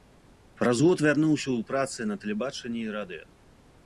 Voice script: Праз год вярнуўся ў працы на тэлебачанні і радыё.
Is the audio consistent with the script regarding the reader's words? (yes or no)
yes